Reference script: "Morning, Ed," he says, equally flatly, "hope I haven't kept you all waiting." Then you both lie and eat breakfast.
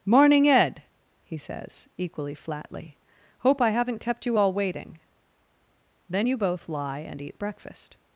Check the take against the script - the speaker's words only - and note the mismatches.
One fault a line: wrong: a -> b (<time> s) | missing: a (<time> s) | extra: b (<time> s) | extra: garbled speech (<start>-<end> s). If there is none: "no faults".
no faults